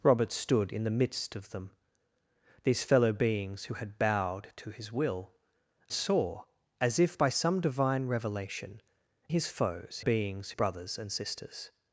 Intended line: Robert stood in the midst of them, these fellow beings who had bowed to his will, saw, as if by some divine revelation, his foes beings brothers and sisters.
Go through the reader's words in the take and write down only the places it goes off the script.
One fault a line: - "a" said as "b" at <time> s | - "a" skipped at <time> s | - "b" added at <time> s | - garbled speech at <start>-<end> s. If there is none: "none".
none